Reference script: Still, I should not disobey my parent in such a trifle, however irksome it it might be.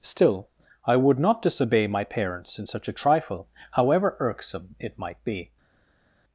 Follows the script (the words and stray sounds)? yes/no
no